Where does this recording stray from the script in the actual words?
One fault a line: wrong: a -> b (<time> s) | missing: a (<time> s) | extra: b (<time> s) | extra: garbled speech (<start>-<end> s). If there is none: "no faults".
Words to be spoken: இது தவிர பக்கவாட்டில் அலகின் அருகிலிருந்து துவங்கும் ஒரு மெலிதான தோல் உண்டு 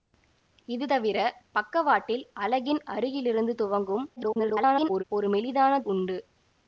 extra: garbled speech (4.2-5.0 s)
missing: தோல் (5.8 s)